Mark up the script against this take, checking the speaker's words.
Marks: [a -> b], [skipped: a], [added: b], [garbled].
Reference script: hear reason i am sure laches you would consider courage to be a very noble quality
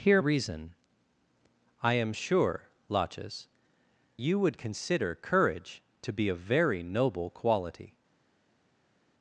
hear reason i am sure laches you would consider courage to be a very noble quality